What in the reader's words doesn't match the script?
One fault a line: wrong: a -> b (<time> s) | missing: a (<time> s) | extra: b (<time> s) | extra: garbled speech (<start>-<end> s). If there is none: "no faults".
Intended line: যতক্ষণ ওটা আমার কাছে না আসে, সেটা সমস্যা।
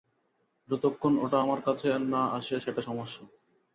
no faults